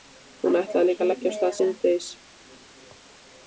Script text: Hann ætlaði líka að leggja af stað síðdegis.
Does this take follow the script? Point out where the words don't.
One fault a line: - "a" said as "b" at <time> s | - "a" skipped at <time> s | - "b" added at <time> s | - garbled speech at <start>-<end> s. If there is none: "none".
- "Hann" said as "Hún" at 0.5 s